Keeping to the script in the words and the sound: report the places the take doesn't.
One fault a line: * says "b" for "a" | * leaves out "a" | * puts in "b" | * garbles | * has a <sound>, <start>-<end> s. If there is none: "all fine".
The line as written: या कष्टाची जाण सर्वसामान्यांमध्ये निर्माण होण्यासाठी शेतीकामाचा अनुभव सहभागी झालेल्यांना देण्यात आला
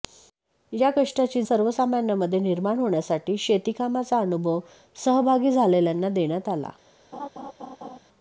* leaves out "जाण"
* has a laugh, 7.1-8.0 s